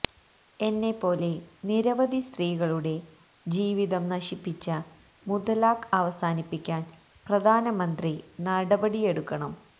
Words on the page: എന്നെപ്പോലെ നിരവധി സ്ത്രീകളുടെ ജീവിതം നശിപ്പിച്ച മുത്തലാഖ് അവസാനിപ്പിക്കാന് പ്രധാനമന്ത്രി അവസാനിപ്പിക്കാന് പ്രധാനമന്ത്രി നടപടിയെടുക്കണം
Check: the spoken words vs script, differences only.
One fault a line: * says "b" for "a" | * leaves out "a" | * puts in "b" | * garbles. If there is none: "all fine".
* leaves out "അവസാനിപ്പിക്കാന് പ്രധാനമന്ത്രി"